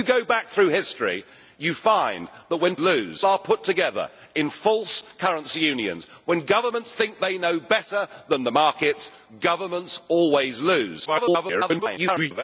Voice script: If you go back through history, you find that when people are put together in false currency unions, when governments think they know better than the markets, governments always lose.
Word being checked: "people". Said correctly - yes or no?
no